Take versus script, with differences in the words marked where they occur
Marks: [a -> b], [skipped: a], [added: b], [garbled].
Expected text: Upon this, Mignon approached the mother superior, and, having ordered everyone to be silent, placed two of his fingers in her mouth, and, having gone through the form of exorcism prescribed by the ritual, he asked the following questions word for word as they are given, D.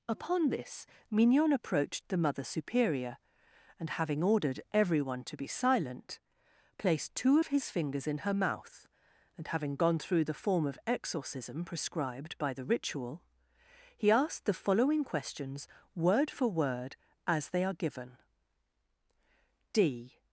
Upon this, Mignon approached the mother superior, and, having ordered everyone to be silent, placed two of his fingers in her mouth, and, having gone through the form of exorcism prescribed by the ritual, he asked the following questions word for word as they are given, D.